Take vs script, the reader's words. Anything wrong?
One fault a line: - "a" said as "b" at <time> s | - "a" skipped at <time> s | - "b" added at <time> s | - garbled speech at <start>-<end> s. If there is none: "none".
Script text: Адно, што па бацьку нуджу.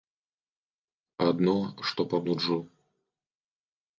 - "бацьку" skipped at 2.2 s